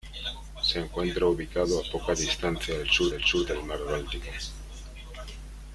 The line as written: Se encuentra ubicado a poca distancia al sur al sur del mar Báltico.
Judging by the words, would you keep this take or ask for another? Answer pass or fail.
pass